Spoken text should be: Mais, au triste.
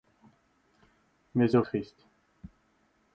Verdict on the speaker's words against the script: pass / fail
pass